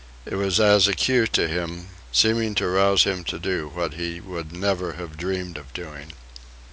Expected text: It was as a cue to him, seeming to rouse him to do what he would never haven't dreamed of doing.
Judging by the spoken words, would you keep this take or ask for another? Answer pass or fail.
fail